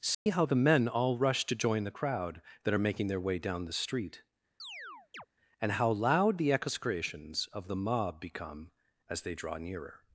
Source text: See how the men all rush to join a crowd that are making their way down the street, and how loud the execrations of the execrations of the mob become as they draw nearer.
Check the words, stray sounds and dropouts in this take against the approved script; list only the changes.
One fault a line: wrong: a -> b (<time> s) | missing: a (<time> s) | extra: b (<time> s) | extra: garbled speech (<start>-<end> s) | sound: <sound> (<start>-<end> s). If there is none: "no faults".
sound: dropout (0.1-0.3 s)
wrong: a -> the (1.8 s)
sound: chirp (4.6-5.3 s)
missing: execrations of the (7.8 s)